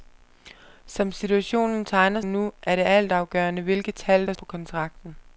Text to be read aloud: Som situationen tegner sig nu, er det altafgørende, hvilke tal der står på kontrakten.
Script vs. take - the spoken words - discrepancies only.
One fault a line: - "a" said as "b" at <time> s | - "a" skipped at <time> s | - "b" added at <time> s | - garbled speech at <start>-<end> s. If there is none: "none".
- "sig" skipped at 2.2 s
- "står" skipped at 4.3 s